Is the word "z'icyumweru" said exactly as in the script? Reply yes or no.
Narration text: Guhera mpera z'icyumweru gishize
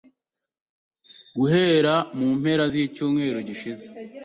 yes